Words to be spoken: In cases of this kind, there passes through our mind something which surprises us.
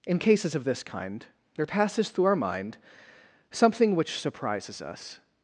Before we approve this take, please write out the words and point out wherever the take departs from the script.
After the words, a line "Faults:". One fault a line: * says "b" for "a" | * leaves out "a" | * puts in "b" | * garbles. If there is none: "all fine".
In cases of this kind, there passes through our mind something which surprises us.
Faults:
all fine